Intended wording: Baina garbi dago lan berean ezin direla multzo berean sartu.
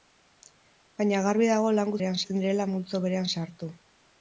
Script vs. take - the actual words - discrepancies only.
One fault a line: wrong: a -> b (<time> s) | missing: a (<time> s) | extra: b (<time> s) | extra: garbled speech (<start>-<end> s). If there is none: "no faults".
no faults